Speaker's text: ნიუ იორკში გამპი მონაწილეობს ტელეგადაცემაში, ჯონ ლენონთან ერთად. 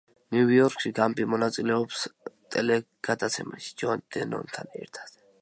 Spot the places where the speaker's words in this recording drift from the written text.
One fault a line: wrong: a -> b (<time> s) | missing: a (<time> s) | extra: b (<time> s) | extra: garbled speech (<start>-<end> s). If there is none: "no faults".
no faults